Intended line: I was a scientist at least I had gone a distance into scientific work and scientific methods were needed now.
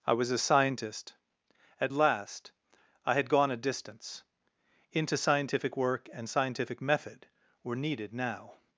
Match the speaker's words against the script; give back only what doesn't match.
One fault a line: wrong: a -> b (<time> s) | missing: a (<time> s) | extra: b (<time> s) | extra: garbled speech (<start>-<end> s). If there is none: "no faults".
wrong: least -> last (1.9 s)
wrong: methods -> method (6.8 s)